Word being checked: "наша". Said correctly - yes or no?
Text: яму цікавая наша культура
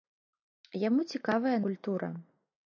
no